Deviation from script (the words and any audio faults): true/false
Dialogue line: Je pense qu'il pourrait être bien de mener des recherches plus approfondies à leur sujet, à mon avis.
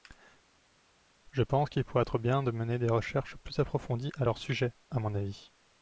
false